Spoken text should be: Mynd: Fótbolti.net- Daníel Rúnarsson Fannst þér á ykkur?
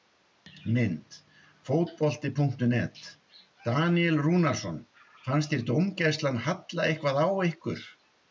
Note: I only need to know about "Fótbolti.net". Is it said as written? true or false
true